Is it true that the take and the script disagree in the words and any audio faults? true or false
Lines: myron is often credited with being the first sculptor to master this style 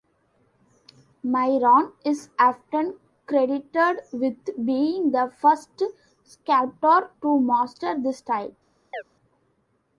true